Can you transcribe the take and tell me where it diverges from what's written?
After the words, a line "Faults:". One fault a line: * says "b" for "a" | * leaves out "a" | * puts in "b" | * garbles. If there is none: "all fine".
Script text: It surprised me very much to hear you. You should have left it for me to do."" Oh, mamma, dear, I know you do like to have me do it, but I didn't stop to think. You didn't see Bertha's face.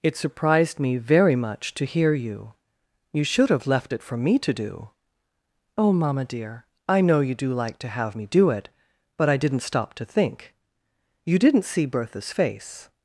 It surprised me very much to hear you. You should have left it for me to do."" Oh, mamma, dear, I know you do like to have me do it, but I didn't stop to think. You didn't see Bertha's face.
Faults:
all fine